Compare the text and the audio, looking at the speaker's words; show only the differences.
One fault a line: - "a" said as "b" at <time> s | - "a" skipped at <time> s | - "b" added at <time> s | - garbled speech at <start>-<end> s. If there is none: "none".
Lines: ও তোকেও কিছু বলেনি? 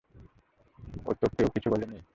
none